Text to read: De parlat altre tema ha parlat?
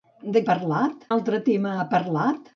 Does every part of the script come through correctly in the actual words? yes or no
yes